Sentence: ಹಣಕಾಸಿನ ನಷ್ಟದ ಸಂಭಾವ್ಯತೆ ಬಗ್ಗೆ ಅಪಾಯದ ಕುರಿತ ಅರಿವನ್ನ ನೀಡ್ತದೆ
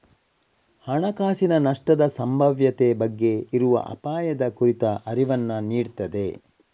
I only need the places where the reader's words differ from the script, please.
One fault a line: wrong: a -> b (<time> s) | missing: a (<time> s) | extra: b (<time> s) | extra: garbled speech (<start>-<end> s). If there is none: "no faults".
extra: ಇರುವ (3.5 s)